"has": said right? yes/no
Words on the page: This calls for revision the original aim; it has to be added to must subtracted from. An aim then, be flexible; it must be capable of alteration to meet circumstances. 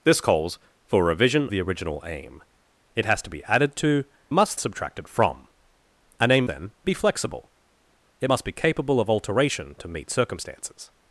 yes